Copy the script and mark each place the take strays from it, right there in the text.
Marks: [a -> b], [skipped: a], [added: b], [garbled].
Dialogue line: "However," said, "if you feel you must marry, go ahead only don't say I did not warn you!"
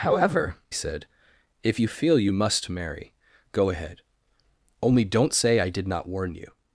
"However," said, "if you feel you must marry, go ahead only don't say I did not warn you!"